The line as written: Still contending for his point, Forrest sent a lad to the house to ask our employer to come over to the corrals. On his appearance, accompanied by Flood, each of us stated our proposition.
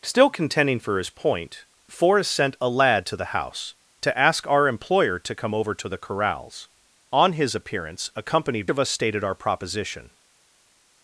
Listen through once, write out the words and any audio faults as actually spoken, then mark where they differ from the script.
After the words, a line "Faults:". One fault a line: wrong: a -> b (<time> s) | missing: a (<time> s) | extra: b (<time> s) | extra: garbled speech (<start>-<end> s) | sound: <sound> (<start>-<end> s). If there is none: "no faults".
Still contending for his point, Forrest sent a lad to the house to ask our employer to come over to the corrals. On his appearance, accompanied of us stated our proposition.
Faults:
missing: by Flood each (8.7 s)